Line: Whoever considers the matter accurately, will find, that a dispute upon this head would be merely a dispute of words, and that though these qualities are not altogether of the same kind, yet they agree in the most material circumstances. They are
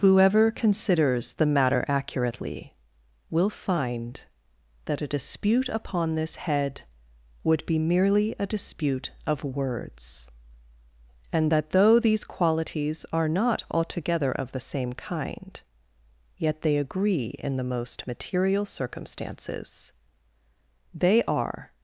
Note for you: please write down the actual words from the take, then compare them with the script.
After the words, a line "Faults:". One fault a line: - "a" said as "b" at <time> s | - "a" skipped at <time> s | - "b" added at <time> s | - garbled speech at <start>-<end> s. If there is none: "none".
Whoever considers the matter accurately, will find, that a dispute upon this head would be merely a dispute of words, and that though these qualities are not altogether of the same kind, yet they agree in the most material circumstances. They are
Faults:
none